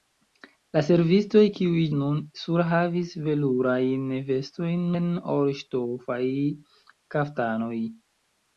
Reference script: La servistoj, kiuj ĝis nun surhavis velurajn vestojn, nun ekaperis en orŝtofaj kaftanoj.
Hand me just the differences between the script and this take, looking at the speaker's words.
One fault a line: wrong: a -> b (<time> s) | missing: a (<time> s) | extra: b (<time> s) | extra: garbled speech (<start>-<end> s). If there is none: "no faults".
missing: ĝis (1.8 s)
missing: nun ekaperis (4.9 s)